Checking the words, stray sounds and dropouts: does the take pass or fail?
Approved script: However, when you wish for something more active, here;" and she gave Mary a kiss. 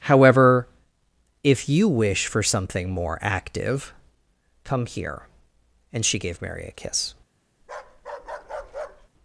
fail